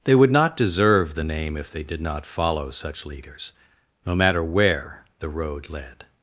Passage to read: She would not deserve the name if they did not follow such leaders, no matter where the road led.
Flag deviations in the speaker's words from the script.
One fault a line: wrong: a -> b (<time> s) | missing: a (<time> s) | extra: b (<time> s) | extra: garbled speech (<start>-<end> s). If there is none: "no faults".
wrong: She -> They (0.0 s)